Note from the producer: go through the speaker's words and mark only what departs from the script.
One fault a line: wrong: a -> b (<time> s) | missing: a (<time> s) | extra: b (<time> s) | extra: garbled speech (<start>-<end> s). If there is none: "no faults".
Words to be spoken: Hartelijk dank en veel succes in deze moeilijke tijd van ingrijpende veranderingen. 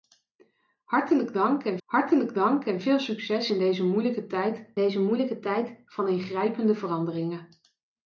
extra: hartelijk dank en (1.8 s)
extra: deze moeilijke tijd (4.8 s)